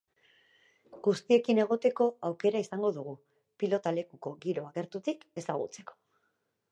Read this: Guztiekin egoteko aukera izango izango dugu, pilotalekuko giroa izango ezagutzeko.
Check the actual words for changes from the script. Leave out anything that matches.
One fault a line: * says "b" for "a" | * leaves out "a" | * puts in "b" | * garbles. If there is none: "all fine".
* leaves out "izango"
* says "gertutik" for "izango"